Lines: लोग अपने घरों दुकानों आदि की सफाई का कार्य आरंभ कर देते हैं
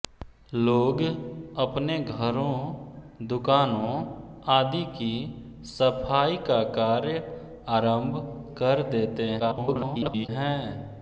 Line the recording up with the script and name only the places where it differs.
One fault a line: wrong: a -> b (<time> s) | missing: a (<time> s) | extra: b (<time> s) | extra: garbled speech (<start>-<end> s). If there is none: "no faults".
extra: garbled speech (9.4-10.3 s)